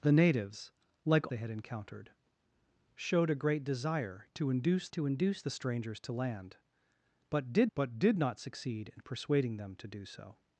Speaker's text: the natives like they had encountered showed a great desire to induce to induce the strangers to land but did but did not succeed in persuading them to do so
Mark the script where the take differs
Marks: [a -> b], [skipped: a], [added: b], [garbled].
the natives like they had encountered showed a great desire to induce to induce the strangers to land but did but did not succeed in persuading them to do so